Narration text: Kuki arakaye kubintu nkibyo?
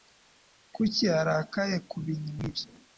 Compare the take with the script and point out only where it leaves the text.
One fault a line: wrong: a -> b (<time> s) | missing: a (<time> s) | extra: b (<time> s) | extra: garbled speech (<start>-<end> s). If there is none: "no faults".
no faults